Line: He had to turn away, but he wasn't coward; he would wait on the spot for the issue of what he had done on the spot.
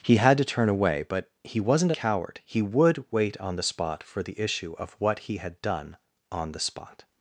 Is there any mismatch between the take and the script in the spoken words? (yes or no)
no